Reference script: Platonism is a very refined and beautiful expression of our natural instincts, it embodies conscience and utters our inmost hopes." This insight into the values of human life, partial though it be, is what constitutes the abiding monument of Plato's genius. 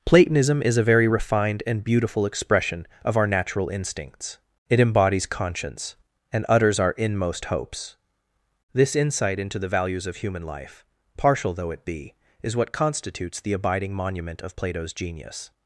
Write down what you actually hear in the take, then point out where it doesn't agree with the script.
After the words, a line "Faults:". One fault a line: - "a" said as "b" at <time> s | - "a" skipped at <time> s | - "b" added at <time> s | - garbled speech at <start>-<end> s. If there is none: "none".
Platonism is a very refined and beautiful expression of our natural instincts, it embodies conscience and utters our inmost hopes." This insight into the values of human life, partial though it be, is what constitutes the abiding monument of Plato's genius.
Faults:
none